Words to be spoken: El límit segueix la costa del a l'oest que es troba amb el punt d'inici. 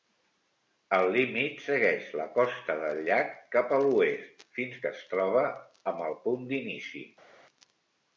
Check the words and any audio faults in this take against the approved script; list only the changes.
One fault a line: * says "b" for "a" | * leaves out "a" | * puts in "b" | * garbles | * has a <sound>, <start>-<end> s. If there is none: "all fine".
* puts in "llac cap"
* puts in "fins"